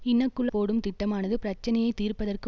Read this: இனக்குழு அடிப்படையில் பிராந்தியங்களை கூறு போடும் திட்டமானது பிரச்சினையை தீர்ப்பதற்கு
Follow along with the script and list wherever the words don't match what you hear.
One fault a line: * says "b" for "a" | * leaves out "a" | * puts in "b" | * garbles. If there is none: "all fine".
* leaves out "அடிப்படையில் பிராந்தியங்களை கூறு"